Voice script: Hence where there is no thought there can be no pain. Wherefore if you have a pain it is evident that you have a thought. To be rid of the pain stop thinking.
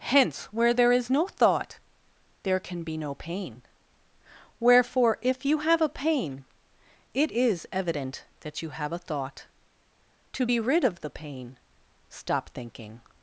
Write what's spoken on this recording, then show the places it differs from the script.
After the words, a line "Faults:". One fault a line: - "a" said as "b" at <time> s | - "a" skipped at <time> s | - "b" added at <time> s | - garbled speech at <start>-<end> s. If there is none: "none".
Hence where there is no thought there can be no pain. Wherefore if you have a pain it is evident that you have a thought. To be rid of the pain stop thinking.
Faults:
none